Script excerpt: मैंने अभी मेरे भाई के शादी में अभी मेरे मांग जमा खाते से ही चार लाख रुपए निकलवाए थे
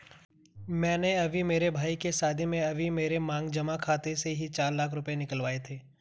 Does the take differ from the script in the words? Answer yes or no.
no